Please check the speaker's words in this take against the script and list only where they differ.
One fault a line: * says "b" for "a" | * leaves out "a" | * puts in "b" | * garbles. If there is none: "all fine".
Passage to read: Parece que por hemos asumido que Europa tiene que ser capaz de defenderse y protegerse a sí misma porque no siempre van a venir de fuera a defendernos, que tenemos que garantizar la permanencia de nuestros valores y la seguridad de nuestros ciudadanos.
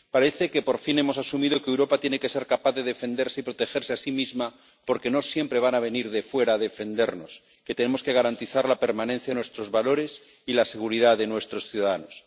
* puts in "fin"